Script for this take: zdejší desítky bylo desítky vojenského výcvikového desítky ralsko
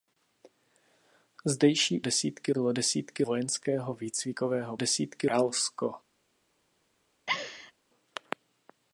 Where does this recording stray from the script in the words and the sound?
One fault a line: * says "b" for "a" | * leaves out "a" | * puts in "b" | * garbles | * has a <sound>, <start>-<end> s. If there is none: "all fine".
* has a laugh, 7.3-7.7 s